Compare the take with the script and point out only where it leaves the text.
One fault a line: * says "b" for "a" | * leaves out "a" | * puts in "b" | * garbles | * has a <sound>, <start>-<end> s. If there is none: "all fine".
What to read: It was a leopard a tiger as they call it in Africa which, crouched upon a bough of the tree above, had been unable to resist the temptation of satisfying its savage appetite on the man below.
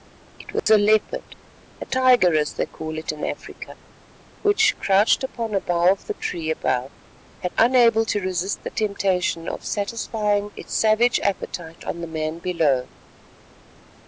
* has a dropout, 0.6-0.7 s
* leaves out "been"